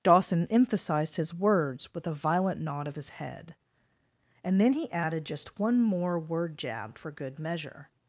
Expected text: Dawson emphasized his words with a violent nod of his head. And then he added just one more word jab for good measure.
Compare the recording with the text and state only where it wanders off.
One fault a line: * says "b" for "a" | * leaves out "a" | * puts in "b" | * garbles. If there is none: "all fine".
all fine